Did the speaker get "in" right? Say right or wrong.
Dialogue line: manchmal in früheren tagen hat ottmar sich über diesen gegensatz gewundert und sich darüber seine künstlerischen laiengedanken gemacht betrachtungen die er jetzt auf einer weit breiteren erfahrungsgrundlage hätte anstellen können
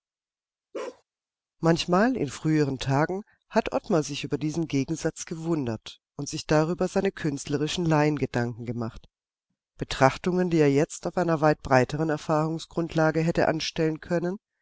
right